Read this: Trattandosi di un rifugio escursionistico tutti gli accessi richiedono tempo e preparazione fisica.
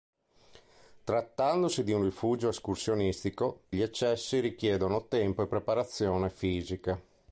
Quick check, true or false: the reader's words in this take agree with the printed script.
false